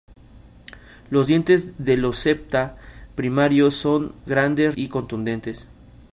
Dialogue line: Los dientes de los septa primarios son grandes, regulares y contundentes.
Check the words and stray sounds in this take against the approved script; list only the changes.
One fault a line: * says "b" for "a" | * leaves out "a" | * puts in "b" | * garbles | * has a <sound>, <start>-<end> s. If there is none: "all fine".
* leaves out "regulares"